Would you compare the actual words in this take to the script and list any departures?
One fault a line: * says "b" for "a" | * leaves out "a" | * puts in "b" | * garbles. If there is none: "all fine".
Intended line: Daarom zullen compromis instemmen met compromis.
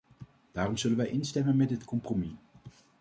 * says "wij" for "compromis"
* puts in "dit"